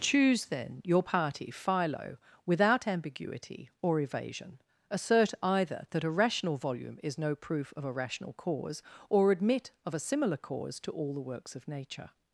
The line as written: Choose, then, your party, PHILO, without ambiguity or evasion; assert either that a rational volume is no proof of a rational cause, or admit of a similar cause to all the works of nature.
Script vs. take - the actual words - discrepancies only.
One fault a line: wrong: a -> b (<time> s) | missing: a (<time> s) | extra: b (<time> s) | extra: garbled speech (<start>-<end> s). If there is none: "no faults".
no faults